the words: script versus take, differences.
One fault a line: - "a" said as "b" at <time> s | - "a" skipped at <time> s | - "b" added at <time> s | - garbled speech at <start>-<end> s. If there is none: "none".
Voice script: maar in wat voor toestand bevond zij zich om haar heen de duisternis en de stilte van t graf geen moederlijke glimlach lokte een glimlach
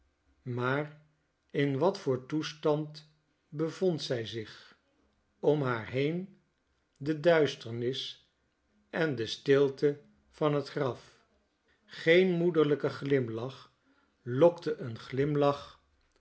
none